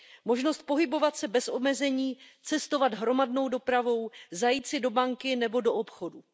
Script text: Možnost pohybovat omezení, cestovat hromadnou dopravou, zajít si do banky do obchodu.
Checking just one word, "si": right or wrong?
right